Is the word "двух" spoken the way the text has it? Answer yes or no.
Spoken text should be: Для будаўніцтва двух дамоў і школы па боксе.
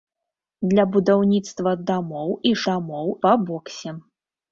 no